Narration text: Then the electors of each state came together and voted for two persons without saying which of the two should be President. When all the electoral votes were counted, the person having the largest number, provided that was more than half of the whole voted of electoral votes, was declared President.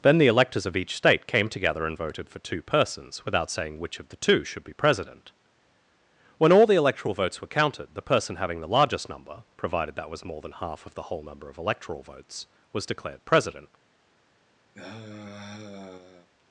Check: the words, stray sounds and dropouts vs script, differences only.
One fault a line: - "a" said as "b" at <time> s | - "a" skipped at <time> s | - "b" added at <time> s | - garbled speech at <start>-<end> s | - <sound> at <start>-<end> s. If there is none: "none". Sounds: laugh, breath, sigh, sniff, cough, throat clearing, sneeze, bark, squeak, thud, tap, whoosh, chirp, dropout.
- "voted" said as "number" at 11.2 s
- sigh at 14.7-16.3 s